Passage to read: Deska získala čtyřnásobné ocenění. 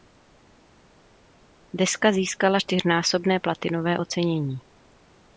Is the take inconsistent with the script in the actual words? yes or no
yes